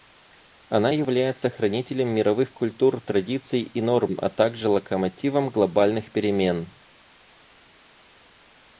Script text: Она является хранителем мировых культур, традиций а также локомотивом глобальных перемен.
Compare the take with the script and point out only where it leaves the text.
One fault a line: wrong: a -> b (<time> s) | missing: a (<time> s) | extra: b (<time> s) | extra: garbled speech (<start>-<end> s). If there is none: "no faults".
extra: и норм (3.6 s)